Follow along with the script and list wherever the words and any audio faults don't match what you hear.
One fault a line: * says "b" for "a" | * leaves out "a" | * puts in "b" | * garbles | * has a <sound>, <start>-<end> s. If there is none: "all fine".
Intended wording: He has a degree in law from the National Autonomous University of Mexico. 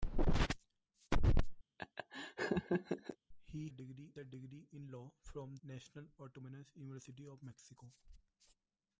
* has a laugh, 1.8-3.2 s
* says "degree" for "has"
* leaves out "the"